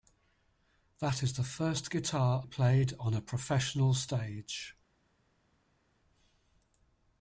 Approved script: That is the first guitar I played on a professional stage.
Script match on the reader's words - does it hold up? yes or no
no